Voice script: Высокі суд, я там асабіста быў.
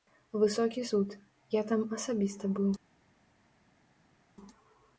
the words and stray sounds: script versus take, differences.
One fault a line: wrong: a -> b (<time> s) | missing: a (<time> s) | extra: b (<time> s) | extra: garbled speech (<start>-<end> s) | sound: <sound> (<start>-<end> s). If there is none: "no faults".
no faults